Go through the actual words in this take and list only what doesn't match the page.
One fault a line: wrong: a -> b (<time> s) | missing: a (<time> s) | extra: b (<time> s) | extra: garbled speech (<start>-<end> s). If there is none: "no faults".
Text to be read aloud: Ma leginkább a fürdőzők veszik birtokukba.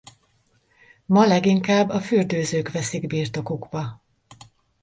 no faults